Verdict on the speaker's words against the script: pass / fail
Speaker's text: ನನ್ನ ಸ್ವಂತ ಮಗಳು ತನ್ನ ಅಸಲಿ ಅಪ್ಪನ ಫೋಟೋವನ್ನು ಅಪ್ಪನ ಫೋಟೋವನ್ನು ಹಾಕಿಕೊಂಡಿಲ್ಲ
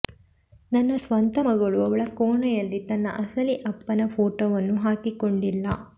fail